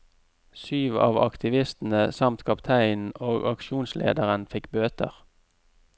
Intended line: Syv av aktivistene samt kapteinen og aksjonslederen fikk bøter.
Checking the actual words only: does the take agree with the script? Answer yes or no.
yes